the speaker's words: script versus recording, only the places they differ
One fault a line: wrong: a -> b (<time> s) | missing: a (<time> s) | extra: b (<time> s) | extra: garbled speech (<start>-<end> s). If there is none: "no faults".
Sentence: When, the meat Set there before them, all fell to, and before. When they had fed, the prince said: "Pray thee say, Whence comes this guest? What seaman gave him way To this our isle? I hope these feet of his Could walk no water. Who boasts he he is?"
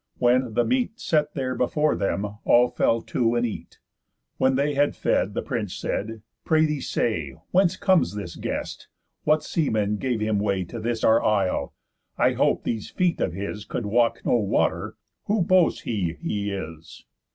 wrong: before -> eat (3.5 s)